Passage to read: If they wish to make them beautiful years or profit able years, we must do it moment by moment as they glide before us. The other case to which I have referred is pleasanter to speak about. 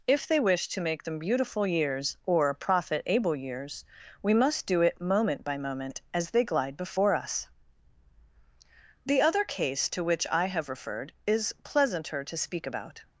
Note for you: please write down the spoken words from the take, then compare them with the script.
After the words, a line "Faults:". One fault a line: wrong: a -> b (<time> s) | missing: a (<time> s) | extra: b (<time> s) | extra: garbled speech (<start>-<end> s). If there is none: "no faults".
If they wish to make them beautiful years or profit able years, we must do it moment by moment as they glide before us. The other case to which I have referred is pleasanter to speak about.
Faults:
no faults